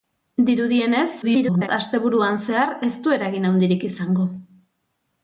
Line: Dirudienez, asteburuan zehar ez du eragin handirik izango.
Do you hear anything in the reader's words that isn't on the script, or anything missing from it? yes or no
yes